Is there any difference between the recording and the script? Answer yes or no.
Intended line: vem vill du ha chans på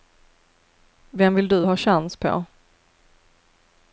no